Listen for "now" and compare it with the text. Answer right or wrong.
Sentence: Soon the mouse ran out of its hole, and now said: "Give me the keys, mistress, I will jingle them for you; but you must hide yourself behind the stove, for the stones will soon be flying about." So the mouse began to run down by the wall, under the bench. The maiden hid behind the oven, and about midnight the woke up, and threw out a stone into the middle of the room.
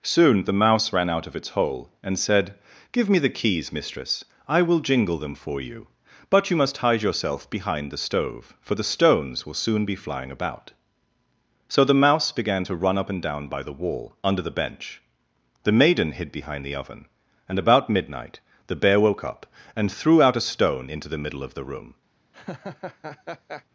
wrong